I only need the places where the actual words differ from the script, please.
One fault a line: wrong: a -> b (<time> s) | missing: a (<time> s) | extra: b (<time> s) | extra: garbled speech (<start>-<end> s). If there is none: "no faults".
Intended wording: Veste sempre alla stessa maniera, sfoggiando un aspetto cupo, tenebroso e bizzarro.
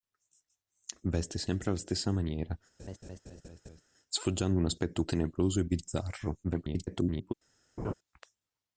missing: cupo (5.0 s)
extra: garbled speech (6.4-7.3 s)